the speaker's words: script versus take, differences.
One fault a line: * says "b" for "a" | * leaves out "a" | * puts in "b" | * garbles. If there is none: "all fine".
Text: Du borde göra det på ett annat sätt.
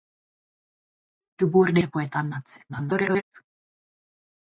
* leaves out "göra"
* garbles